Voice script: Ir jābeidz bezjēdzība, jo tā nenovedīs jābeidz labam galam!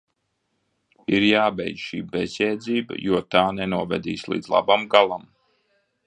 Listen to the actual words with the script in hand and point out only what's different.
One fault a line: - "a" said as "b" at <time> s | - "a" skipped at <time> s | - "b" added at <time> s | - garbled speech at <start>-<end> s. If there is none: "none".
- "šī" added at 1.9 s
- "jābeidz" said as "līdz" at 4.3 s